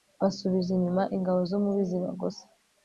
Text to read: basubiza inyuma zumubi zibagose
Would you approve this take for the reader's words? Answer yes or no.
no